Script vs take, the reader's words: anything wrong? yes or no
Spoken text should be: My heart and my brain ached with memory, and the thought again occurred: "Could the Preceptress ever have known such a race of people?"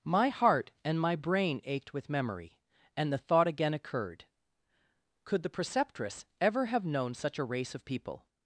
no